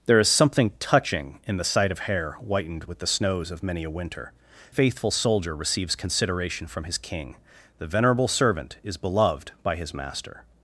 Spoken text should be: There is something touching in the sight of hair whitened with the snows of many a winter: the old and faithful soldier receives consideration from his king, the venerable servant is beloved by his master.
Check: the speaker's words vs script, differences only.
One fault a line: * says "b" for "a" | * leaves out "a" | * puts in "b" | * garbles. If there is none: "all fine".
* leaves out "the old and"